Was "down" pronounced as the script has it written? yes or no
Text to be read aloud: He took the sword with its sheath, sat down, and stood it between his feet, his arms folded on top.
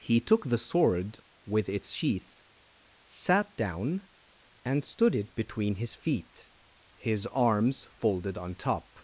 yes